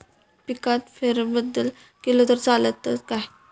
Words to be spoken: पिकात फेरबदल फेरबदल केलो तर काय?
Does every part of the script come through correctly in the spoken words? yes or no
no